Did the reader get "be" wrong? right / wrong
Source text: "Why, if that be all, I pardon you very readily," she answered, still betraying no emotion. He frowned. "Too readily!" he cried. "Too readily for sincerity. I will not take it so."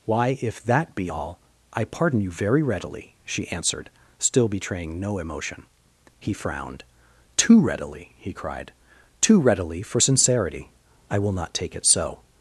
right